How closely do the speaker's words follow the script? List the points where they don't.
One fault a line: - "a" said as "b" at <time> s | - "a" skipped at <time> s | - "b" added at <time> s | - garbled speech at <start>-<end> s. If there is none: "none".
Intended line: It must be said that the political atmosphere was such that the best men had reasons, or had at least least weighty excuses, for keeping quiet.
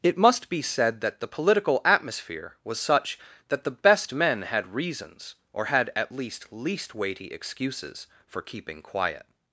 none